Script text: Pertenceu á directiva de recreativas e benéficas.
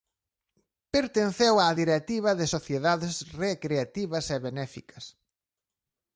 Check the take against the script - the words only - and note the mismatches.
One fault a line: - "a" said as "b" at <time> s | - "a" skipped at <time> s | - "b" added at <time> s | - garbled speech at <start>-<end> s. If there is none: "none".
- "sociedades" added at 2.5 s